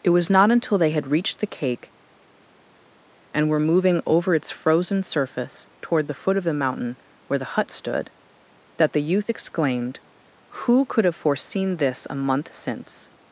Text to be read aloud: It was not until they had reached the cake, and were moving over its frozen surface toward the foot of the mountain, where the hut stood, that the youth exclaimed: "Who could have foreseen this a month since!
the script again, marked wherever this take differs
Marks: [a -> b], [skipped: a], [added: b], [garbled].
It was not until they had reached the cake, and were moving over its frozen surface toward the foot of the mountain, where the hut stood, that the youth exclaimed: "Who could have foreseen this a month since!